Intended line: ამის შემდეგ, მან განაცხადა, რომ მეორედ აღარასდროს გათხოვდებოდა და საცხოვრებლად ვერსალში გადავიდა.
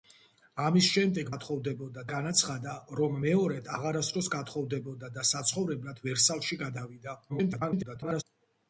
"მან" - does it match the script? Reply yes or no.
no